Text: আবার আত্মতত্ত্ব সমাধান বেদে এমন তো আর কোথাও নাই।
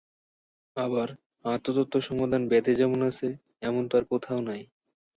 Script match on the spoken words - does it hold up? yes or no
no